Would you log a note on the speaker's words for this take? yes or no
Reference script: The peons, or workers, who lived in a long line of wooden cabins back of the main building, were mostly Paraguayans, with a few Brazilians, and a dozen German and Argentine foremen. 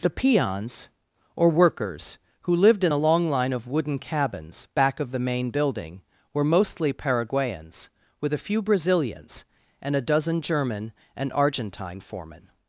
no